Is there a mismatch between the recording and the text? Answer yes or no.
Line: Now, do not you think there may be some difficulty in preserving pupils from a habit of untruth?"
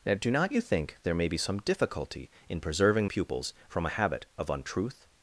no